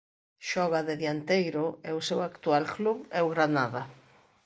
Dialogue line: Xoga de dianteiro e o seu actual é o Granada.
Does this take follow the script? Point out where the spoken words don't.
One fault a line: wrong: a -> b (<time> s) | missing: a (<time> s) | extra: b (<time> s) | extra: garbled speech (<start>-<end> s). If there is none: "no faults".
extra: club (2.7 s)